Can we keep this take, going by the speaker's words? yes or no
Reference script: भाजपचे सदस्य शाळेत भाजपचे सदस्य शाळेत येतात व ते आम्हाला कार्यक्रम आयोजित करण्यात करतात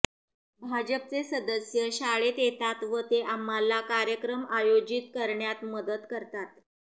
no